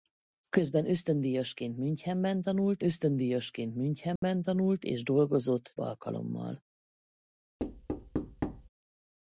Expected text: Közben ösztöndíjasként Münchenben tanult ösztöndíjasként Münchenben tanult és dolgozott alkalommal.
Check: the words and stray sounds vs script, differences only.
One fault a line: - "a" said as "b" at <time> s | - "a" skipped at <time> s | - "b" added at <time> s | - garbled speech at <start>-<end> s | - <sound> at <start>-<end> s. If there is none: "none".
- dropout at 4.2-4.2 s
- thud at 7.6-8.7 s